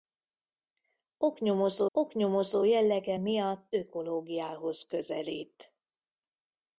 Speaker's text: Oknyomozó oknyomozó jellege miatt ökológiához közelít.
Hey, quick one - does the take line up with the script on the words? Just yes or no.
yes